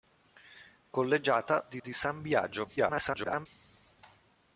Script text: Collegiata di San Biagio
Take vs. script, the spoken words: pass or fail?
fail